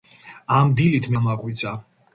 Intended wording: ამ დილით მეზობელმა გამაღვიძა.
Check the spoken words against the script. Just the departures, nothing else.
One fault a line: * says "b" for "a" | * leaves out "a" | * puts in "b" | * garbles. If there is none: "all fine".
* leaves out "მეზობელმა"